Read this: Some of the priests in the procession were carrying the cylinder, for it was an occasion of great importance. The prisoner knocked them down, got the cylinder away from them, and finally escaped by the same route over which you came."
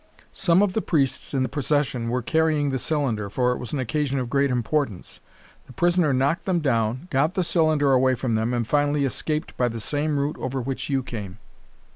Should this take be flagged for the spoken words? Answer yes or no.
no